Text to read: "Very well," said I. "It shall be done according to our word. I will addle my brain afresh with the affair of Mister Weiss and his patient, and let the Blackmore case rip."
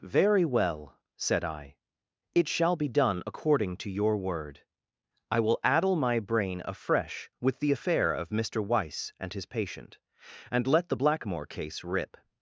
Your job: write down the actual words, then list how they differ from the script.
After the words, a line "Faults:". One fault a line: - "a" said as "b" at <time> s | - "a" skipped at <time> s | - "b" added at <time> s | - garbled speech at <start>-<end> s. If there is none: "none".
"Very well," said I. "It shall be done according to your word. I will addle my brain afresh with the affair of Mister Weiss and his patient, and let the Blackmore case rip."
Faults:
- "our" said as "your" at 3.9 s